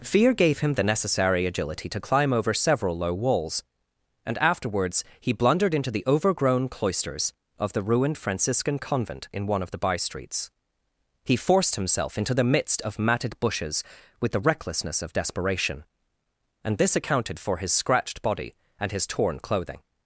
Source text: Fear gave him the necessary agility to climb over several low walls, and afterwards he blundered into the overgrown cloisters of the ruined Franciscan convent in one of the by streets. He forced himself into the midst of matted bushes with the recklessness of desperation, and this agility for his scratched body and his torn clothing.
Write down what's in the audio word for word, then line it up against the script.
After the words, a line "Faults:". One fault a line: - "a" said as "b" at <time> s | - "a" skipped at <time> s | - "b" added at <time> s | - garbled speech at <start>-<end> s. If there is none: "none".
Fear gave him the necessary agility to climb over several low walls, and afterwards he blundered into the overgrown cloisters of the ruined Franciscan convent in one of the by streets. He forced himself into the midst of matted bushes with the recklessness of desperation, and this accounted for his scratched body and his torn clothing.
Faults:
- "agility" said as "accounted" at 16.9 s